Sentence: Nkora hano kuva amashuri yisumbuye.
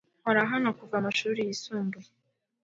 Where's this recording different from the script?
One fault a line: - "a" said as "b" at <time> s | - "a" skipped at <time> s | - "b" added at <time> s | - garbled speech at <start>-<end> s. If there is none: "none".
none